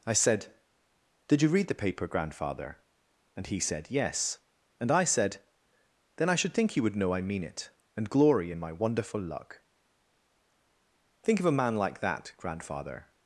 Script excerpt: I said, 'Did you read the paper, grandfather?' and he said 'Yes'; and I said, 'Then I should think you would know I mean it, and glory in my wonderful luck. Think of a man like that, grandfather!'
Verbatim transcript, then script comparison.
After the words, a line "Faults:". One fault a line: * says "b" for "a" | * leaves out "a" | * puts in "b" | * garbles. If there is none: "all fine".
I said, 'Did you read the paper, grandfather?' and he said 'Yes'; and I said, 'Then I should think you would know I mean it, and glory in my wonderful luck. Think of a man like that, grandfather!'
Faults:
all fine